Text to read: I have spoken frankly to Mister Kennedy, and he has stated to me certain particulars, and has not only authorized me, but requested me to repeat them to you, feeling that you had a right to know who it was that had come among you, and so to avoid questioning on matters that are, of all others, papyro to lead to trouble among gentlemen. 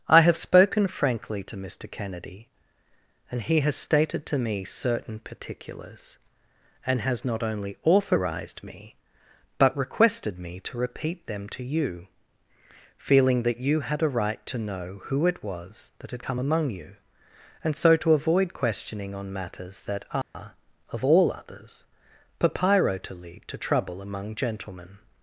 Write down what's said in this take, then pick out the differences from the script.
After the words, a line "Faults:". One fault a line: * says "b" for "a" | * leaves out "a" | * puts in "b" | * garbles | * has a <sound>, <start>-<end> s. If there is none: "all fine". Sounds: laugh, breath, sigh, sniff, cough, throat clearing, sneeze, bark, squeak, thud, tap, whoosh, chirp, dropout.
I have spoken frankly to Mister Kennedy, and he has stated to me certain particulars, and has not only authorized me, but requested me to repeat them to you, feeling that you had a right to know who it was that had come among you, and so to avoid questioning on matters that are, of all others, papyro to lead to trouble among gentlemen.
Faults:
* has a dropout, 20.2-20.3 s